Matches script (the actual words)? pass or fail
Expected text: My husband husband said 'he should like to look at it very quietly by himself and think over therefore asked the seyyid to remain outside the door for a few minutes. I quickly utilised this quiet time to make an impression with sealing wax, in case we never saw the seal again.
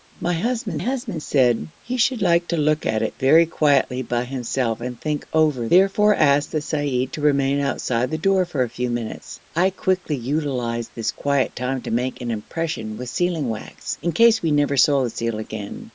pass